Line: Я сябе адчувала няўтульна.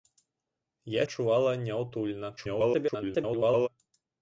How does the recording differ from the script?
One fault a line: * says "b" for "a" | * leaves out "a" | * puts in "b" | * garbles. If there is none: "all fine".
* leaves out "сябе"
* garbles